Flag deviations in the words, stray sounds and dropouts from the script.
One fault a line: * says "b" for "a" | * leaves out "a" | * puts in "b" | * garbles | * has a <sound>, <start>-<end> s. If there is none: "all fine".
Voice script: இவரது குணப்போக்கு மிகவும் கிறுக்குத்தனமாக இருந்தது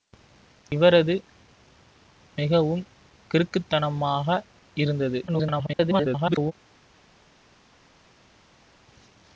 * leaves out "குணப்போக்கு"
* garbles